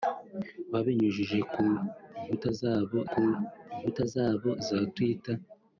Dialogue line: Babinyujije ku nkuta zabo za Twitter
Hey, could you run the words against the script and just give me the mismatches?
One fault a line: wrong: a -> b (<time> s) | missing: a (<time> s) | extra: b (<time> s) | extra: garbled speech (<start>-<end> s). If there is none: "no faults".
extra: ku nkuta zabo (3.1 s)